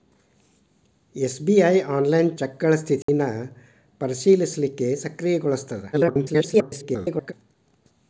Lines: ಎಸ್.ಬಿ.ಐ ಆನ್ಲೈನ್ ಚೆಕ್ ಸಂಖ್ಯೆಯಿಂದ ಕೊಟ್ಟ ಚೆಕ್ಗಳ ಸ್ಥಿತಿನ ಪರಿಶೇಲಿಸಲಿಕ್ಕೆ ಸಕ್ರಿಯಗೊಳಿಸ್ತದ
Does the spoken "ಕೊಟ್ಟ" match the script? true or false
false